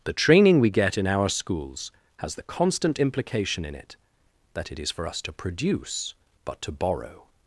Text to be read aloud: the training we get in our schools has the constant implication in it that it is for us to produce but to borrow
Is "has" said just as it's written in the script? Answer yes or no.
yes